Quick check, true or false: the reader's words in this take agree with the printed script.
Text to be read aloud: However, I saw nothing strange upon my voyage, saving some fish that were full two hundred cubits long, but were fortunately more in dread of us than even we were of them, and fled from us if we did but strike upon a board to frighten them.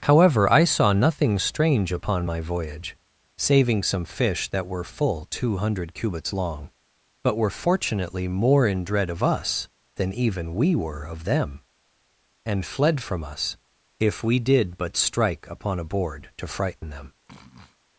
true